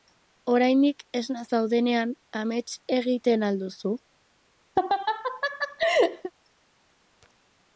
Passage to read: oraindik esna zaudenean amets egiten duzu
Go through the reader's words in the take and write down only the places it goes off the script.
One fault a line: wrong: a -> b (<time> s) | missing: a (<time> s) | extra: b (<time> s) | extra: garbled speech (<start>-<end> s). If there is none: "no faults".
extra: al (3.5 s)